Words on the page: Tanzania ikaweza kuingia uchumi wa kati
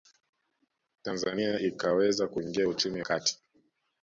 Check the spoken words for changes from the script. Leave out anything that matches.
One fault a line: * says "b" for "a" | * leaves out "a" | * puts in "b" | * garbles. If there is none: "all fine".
* leaves out "wa"